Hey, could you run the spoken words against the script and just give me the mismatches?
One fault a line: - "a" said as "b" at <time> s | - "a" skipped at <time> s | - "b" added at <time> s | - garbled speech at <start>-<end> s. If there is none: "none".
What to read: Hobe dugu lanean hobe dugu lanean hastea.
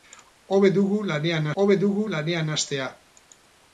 none